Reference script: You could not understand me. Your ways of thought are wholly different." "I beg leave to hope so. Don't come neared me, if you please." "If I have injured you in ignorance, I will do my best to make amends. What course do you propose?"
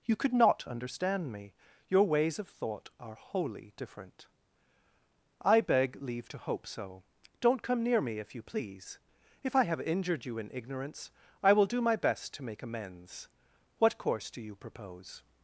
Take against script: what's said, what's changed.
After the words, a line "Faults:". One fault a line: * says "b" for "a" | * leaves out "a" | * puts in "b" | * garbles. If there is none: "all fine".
You could not understand me. Your ways of thought are wholly different." "I beg leave to hope so. Don't come near me, if you please." "If I have injured you in ignorance, I will do my best to make amends. What course do you propose?"
Faults:
* says "near" for "neared"